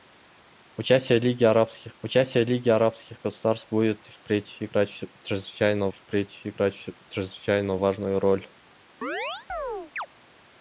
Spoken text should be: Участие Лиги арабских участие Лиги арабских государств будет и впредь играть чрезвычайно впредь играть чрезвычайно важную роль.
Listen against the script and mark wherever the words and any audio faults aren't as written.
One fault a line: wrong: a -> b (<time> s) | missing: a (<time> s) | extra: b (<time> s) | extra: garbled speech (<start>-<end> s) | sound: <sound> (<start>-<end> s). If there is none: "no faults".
sound: chirp (9.0-10.1 s)